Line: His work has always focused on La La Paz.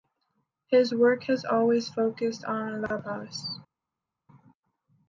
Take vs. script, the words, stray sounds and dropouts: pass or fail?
fail